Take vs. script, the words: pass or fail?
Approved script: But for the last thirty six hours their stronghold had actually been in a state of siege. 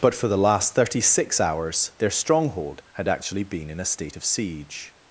pass